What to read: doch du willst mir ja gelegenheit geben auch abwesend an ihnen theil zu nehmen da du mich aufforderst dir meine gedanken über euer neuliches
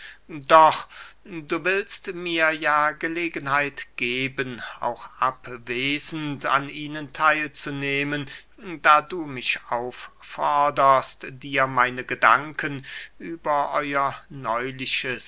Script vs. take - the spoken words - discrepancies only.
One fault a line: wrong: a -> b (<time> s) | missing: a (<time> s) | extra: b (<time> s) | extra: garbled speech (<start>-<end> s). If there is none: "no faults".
no faults